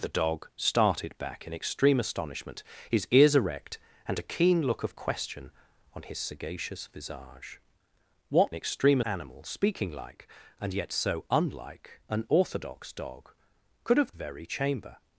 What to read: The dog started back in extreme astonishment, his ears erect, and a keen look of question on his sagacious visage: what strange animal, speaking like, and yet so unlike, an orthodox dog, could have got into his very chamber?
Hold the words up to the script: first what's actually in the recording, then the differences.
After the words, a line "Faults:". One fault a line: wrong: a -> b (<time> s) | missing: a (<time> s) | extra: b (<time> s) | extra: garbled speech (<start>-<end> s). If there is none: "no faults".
The dog started back in extreme astonishment, his ears erect, and a keen look of question on his sagacious visage: what extreme animal, speaking like, and yet so unlike, an orthodox dog, could have very chamber?
Faults:
wrong: strange -> extreme (8.5 s)
missing: got into his (14.2 s)